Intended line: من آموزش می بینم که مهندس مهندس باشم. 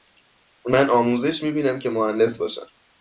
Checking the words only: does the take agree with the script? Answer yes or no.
no